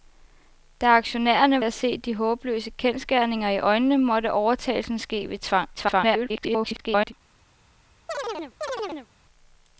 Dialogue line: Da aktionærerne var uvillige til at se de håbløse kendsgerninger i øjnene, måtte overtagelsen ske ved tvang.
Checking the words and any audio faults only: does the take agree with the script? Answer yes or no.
no